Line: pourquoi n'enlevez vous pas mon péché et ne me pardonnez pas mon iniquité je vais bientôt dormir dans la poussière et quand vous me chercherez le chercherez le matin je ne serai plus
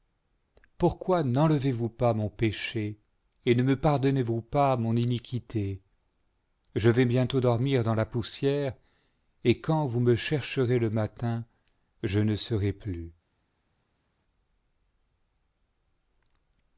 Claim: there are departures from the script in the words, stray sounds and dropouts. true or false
true